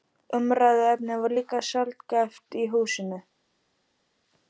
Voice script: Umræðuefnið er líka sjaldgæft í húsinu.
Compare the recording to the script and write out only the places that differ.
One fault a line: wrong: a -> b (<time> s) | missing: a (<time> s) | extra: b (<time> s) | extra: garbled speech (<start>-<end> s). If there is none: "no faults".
wrong: er -> var (1.2 s)